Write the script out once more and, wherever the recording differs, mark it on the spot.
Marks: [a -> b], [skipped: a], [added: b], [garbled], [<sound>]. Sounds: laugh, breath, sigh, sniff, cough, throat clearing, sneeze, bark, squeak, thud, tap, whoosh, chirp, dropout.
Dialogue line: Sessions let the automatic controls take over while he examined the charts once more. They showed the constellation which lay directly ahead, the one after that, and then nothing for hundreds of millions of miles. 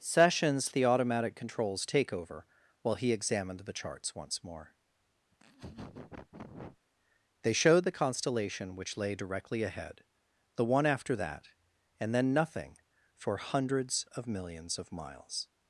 Sessions [skipped: let] the automatic controls take over while he examined the charts once more. [laugh] They showed the constellation which lay directly ahead, the one after that, and then nothing for hundreds of millions of miles.